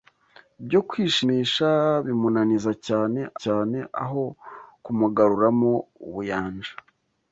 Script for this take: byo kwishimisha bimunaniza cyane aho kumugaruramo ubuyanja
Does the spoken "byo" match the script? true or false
true